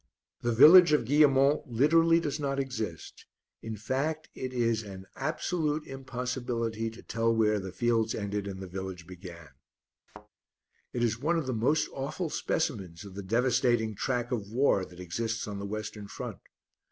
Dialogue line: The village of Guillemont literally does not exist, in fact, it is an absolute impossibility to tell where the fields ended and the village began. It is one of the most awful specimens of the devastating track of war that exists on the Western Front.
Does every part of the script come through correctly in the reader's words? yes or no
yes